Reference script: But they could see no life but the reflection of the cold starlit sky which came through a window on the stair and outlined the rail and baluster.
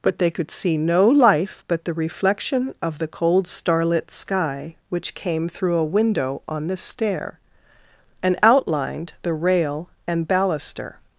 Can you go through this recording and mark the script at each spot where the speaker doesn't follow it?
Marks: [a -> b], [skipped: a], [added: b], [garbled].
But they could see no life but the reflection of the cold starlit sky which came through a window on the stair and outlined the rail and baluster.